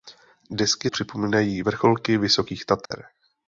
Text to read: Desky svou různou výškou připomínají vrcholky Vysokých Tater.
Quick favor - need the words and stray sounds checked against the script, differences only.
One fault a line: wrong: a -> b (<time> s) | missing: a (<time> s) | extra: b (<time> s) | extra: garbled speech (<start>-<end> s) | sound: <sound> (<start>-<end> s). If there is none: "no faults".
missing: svou různou výškou (0.9 s)
sound: dropout (2.9-2.9 s)